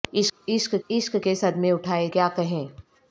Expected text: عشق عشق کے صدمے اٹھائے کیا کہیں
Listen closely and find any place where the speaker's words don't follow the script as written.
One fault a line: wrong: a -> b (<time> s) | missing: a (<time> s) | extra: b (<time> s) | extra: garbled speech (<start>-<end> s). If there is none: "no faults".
no faults